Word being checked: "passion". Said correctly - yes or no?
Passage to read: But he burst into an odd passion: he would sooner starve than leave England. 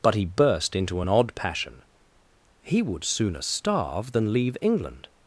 yes